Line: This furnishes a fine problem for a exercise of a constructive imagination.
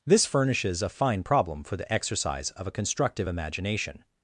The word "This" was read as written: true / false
true